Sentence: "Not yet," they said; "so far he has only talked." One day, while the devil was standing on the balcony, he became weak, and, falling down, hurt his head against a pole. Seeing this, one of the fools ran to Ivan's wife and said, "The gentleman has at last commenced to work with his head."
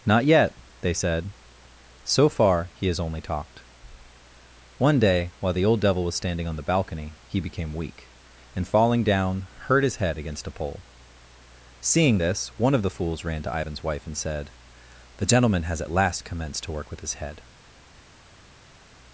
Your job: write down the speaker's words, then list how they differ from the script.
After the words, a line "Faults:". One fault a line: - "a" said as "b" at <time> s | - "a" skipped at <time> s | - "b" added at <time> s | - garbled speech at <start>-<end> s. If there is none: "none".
"Not yet," they said; "so far he has only talked." One day, while the old devil was standing on the balcony, he became weak, and, falling down, hurt his head against a pole. Seeing this, one of the fools ran to Ivan's wife and said, "The gentleman has at last commenced to work with his head."
Faults:
- "old" added at 5.7 s